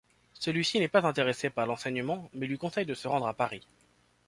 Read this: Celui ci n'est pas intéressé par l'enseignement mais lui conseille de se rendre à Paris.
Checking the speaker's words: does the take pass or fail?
pass